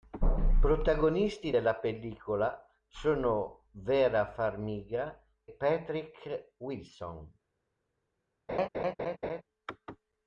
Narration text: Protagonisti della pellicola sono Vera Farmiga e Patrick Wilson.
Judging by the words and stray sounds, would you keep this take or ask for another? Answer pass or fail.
fail